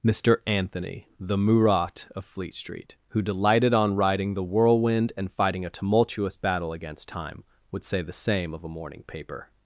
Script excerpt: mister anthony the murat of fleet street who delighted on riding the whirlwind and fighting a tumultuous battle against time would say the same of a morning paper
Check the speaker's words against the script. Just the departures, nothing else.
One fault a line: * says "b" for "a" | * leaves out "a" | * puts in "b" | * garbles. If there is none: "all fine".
all fine